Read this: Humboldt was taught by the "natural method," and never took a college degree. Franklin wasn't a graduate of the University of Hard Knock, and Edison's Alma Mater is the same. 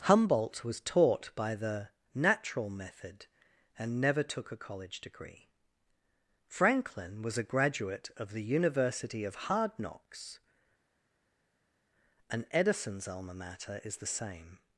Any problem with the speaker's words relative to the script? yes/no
yes